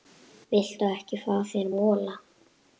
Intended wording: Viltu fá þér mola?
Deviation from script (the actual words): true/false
true